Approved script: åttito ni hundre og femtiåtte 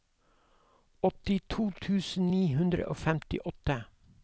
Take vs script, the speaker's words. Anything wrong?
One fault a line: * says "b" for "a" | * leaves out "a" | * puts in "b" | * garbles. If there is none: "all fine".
* puts in "tusen"